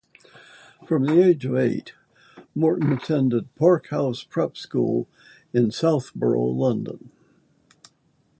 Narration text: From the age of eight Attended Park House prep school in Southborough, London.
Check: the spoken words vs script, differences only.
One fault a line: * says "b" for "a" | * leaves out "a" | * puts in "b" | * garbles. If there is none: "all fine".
* puts in "Morton"